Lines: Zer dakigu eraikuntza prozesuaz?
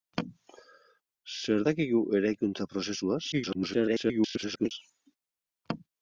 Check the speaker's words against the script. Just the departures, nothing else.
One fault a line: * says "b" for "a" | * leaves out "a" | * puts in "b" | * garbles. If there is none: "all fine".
* garbles